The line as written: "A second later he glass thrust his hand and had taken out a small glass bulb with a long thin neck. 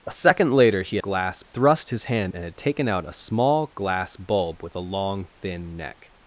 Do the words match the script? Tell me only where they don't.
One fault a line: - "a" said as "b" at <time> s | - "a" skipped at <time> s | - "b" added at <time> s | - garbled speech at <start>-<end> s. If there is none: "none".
none